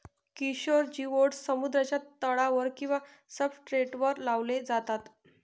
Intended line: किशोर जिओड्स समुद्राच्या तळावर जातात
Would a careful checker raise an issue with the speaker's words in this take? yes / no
yes